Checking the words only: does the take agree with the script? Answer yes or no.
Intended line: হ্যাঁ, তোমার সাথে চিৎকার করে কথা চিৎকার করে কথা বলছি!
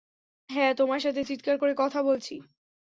no